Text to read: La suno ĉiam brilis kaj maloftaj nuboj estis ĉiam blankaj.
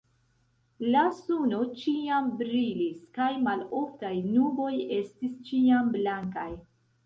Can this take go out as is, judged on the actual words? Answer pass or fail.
pass